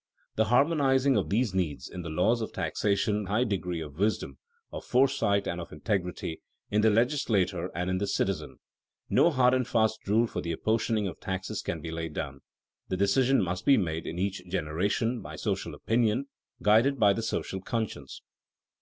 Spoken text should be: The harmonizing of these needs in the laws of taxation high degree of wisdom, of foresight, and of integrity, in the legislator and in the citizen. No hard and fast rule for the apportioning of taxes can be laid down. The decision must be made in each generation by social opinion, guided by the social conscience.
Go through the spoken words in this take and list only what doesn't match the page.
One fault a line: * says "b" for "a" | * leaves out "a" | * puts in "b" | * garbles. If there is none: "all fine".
all fine